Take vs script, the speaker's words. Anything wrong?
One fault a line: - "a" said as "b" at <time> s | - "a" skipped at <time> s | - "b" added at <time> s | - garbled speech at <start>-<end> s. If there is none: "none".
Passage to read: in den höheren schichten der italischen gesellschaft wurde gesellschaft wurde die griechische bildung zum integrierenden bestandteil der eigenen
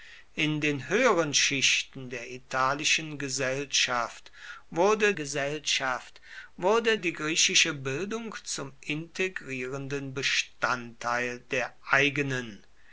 none